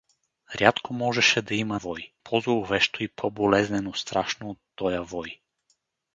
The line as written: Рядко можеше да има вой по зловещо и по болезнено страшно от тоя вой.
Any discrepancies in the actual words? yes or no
no